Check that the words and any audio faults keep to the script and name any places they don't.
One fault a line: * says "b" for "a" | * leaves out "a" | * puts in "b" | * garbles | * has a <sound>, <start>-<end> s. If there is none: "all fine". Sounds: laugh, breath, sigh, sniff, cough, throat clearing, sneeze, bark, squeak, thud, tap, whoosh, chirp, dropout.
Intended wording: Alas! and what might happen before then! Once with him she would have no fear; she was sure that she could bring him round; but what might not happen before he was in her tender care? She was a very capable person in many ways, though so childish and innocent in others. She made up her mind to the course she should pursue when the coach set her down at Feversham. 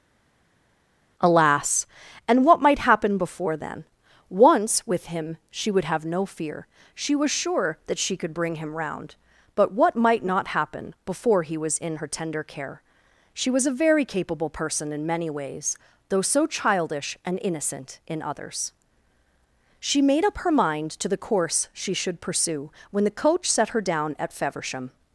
all fine